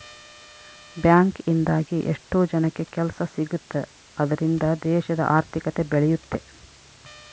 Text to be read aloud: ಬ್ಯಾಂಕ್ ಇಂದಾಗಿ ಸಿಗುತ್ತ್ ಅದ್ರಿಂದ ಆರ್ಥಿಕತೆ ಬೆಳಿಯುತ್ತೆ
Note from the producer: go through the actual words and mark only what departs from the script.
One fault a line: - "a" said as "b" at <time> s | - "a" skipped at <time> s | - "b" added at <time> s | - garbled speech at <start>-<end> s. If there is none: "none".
- "ಎಷ್ಟೋ ಜನಕ್ಕೆ ಕೆಲ್ಸ" added at 2.1 s
- "ದೇಶದ" added at 4.8 s